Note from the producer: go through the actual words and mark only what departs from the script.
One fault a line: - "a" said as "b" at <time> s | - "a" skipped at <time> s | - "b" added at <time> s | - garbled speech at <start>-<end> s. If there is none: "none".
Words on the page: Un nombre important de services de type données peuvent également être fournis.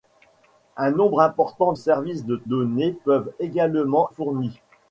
- "de" skipped at 1.7 s
- "type" skipped at 2.4 s
- "être" skipped at 4.1 s